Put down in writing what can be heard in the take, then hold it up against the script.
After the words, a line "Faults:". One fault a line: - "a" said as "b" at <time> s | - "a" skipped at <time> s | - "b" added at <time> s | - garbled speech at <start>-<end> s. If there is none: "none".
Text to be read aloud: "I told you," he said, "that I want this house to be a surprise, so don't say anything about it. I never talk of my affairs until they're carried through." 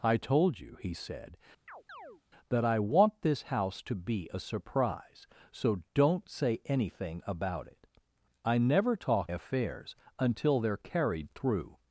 "I told you," he said, "that I want this house to be a surprise, so don't say anything about it. I never talk affairs until they're carried through."
Faults:
- "of my" skipped at 9.3 s